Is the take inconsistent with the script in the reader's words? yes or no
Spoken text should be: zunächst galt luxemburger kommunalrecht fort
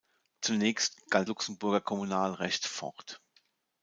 no